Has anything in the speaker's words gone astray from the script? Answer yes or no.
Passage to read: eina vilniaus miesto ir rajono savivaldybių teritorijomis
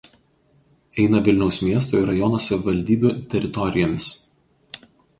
no